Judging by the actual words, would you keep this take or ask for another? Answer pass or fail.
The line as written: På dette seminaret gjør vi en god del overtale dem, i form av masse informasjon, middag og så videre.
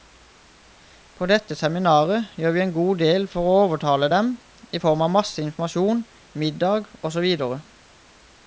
fail